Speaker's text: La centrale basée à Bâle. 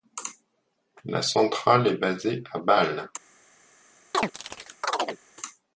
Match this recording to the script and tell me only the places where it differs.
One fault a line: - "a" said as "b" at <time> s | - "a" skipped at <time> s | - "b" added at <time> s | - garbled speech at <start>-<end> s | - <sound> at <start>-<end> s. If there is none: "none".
- "est" added at 1.9 s
- chirp at 4.1-5.2 s